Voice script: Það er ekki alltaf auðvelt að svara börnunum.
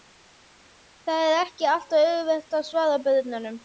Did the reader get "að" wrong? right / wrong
right